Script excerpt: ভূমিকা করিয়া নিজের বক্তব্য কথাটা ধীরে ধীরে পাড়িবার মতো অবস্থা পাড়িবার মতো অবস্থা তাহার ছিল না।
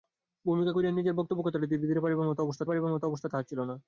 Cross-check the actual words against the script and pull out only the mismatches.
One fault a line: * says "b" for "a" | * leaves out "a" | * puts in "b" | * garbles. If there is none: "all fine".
all fine